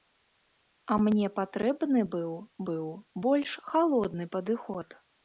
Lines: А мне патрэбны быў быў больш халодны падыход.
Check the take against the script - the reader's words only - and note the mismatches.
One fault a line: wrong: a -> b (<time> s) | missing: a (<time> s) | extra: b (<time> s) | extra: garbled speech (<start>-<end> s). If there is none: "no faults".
no faults